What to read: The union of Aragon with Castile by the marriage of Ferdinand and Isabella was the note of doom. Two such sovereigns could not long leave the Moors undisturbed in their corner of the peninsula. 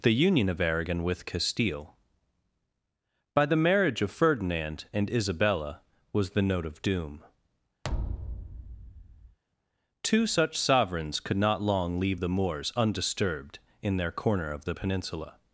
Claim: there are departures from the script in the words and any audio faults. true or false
true